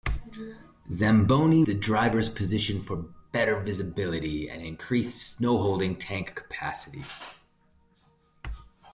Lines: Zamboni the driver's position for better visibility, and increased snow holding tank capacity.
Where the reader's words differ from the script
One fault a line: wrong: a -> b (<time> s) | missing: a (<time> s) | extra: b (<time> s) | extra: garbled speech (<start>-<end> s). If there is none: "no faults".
no faults